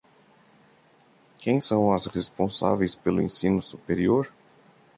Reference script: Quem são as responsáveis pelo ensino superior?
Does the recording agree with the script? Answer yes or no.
yes